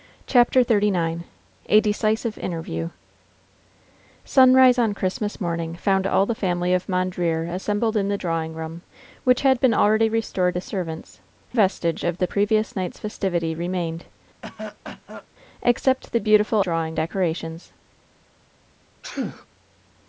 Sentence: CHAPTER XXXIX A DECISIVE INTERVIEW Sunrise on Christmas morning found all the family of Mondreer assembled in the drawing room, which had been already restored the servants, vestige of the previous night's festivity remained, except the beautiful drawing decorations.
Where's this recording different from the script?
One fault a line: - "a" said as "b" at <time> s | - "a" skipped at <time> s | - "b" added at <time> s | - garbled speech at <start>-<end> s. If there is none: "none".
none